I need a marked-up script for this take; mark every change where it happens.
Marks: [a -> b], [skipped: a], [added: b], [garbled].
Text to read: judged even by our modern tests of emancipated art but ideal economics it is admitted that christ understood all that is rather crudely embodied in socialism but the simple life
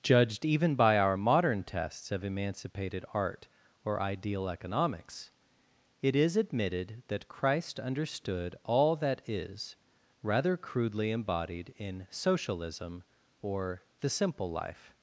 judged even by our modern tests of emancipated art [but -> or] ideal economics it is admitted that christ understood all that is rather crudely embodied in socialism [but -> or] the simple life